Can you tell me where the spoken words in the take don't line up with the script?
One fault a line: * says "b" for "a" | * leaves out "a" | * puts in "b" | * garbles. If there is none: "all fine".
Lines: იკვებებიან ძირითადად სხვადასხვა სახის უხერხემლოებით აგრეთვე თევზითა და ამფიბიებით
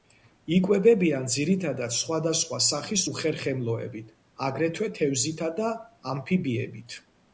all fine